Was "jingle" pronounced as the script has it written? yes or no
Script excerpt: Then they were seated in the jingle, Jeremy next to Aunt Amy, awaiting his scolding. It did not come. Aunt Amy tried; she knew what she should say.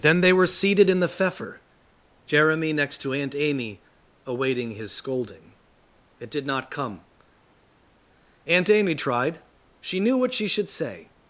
no